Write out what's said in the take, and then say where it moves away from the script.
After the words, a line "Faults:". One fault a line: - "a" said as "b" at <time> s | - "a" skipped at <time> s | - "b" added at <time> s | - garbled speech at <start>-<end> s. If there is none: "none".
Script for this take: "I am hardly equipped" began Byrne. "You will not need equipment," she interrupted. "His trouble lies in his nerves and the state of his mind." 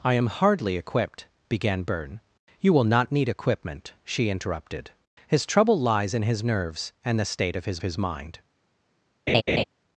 "I am hardly equipped" began Byrne. "You will not need equipment," she interrupted. "His trouble lies in his nerves and the state of his his mind."
Faults:
- "his" added at 7.8 s